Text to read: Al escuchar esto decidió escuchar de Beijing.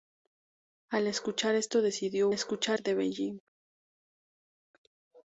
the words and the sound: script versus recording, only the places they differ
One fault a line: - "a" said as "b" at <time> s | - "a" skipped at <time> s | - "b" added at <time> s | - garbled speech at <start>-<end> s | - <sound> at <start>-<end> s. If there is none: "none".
none